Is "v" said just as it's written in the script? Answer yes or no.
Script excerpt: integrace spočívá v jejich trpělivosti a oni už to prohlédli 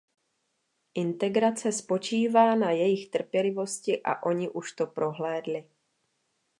no